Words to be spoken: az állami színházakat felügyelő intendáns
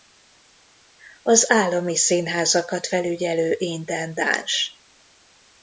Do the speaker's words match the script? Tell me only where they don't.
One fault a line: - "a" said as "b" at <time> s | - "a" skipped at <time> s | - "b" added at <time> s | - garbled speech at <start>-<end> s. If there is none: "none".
none